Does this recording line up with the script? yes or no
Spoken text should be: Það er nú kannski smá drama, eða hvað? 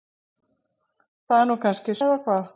no